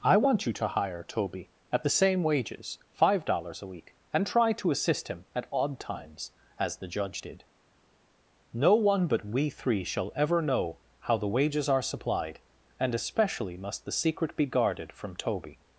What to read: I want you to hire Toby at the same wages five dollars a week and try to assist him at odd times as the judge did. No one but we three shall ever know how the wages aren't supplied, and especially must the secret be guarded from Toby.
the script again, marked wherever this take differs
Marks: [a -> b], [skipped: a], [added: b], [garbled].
I want you to hire Toby at the same wages five dollars a week and try to assist him at odd times as the judge did. No one but we three shall ever know how the wages [aren't -> are] supplied, and especially must the secret be guarded from Toby.